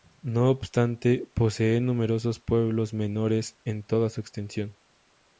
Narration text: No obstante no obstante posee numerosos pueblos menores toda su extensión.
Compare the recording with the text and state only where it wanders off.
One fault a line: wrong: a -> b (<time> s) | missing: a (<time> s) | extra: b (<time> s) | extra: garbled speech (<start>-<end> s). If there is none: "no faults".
missing: no obstante (1.3 s)
extra: en (3.6 s)